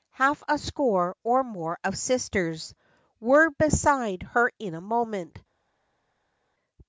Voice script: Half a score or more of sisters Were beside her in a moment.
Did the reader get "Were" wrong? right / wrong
right